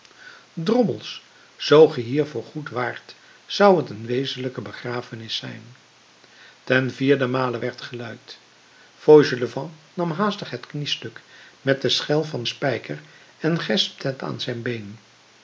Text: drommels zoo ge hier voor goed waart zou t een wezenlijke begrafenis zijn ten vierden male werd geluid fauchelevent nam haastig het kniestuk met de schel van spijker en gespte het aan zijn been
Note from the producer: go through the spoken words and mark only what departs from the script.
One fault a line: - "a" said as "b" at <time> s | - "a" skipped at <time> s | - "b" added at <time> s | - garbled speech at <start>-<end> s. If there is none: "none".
none